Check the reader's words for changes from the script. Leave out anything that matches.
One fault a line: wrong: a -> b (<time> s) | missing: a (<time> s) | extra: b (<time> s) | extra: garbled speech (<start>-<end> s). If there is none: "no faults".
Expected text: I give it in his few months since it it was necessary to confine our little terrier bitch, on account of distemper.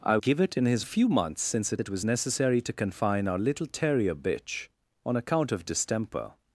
no faults